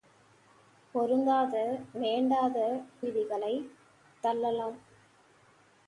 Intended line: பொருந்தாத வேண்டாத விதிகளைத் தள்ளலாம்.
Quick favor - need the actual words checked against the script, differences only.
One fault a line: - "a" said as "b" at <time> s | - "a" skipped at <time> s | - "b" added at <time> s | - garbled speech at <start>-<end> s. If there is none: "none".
none